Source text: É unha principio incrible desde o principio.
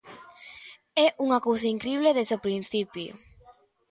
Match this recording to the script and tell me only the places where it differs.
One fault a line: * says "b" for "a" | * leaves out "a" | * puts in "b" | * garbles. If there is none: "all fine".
* says "cousa" for "principio"